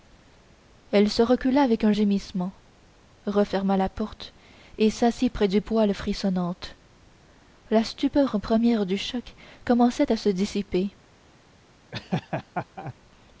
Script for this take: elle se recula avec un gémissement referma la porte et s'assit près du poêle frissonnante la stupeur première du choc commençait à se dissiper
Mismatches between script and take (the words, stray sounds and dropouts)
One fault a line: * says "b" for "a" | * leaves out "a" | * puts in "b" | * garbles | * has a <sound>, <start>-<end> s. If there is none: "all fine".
* has a laugh, 11.9-12.9 s